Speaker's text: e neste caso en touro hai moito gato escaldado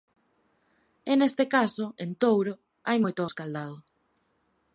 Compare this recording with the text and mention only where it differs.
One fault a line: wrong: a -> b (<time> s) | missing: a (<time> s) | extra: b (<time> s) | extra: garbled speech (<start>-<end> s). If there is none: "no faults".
missing: gato (3.2 s)